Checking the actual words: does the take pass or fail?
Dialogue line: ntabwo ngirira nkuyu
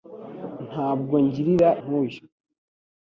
pass